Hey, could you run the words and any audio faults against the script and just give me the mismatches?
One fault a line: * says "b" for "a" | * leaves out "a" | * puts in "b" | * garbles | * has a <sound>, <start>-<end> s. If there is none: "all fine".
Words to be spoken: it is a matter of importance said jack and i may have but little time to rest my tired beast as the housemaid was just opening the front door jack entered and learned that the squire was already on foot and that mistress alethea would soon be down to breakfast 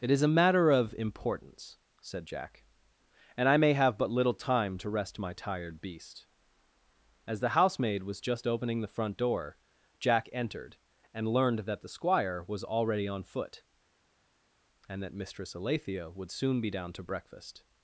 all fine